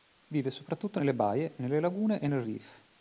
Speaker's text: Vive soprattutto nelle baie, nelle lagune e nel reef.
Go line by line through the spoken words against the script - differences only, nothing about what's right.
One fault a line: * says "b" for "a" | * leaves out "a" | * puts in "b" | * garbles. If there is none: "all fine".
all fine